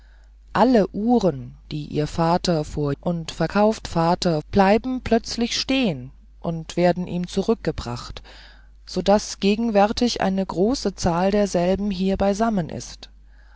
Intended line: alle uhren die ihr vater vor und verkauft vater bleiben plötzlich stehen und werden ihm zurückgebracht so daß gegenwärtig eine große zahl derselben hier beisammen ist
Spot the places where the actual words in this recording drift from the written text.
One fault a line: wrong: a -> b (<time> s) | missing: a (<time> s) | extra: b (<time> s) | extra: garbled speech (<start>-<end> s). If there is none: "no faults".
no faults